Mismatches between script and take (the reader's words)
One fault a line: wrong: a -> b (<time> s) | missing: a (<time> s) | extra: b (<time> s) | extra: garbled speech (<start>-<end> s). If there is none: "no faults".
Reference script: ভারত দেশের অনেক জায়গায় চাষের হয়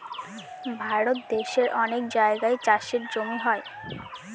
extra: জমি (3.1 s)